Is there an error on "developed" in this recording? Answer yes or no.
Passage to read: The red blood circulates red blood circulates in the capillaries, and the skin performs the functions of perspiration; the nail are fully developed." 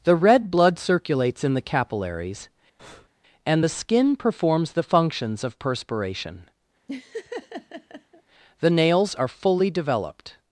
no